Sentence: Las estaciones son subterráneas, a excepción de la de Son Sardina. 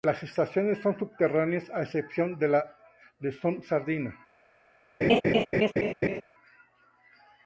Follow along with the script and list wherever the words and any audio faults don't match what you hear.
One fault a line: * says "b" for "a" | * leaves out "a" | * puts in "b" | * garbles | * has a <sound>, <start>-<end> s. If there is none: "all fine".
* has a laugh, 5.0-6.2 s